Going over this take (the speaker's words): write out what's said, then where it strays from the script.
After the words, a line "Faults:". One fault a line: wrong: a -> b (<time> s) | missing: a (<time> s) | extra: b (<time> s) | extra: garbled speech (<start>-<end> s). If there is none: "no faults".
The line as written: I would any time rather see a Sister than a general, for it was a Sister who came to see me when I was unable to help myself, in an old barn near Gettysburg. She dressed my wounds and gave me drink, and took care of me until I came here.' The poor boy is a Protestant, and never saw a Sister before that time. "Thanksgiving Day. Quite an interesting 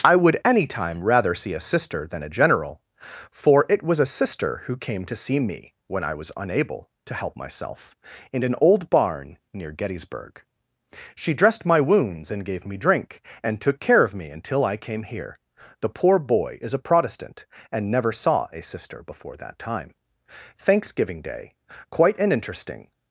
I would any time rather see a Sister than a general, for it was a Sister who came to see me when I was unable to help myself, in an old barn near Gettysburg. She dressed my wounds and gave me drink, and took care of me until I came here.' The poor boy is a Protestant, and never saw a Sister before that time. "Thanksgiving Day. Quite an interesting
Faults:
no faults